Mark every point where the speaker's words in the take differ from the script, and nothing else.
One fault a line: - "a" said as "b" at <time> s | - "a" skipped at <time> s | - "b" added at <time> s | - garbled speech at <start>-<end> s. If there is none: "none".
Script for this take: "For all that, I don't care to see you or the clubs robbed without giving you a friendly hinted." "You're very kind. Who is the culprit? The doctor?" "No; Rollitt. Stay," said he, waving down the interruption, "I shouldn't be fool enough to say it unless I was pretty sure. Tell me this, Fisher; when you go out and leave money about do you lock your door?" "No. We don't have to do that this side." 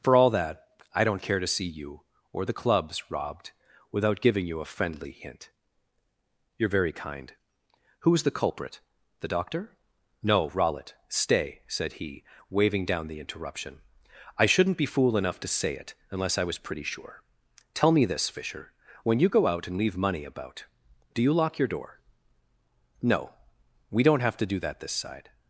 - "hinted" said as "hint" at 5.1 s